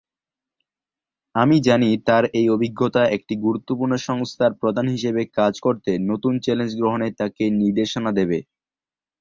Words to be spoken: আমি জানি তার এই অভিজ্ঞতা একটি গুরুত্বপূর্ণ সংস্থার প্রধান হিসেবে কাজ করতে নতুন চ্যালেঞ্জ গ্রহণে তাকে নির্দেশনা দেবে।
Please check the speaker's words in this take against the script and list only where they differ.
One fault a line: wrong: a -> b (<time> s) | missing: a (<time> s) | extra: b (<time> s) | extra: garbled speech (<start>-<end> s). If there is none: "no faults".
no faults